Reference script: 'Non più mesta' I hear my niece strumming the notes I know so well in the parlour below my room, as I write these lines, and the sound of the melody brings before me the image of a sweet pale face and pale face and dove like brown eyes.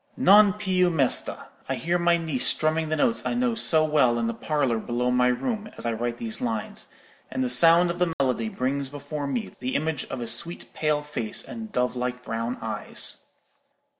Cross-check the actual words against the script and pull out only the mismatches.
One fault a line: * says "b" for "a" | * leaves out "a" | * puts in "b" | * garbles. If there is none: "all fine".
* leaves out "pale face and"